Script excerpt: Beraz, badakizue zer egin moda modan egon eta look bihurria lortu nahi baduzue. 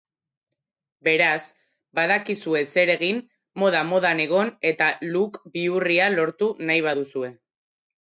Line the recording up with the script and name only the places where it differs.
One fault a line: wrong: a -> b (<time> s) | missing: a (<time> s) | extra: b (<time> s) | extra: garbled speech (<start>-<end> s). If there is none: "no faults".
no faults